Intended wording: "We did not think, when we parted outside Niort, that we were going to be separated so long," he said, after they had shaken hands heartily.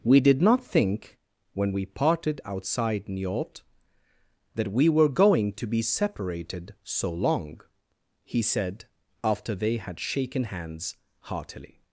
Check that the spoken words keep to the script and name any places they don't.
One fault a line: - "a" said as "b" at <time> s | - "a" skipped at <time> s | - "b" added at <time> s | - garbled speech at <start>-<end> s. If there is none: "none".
none